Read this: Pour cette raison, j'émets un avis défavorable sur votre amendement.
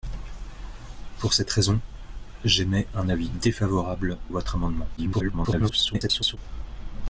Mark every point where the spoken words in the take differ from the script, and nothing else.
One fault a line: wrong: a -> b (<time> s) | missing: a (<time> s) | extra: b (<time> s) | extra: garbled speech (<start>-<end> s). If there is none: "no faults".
missing: sur (4.2 s)
extra: garbled speech (5.0-6.4 s)